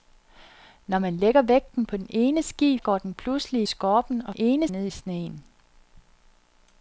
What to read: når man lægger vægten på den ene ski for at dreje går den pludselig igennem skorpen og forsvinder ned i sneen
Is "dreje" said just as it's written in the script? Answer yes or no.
no